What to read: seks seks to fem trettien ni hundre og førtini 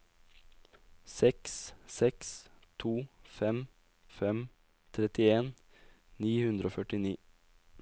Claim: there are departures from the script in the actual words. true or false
true